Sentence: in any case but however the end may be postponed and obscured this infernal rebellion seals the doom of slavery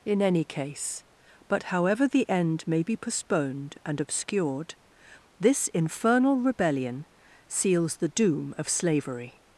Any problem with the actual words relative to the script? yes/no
no